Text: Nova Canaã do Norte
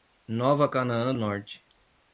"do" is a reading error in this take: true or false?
true